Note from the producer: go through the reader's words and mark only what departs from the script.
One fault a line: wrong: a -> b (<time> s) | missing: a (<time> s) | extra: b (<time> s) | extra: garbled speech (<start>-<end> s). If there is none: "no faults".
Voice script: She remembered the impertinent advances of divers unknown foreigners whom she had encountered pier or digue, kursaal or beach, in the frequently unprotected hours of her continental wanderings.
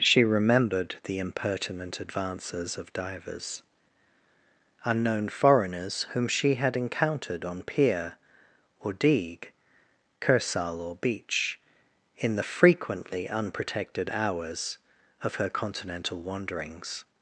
extra: on (7.4 s)